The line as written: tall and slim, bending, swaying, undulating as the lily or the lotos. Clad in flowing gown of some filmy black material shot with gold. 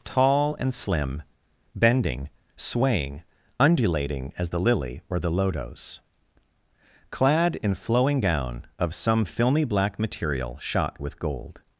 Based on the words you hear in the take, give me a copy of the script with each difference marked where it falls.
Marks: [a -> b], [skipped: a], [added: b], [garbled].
tall and slim, bending, swaying, undulating as the lily or the lotos. Clad in flowing gown of some filmy black material shot with gold.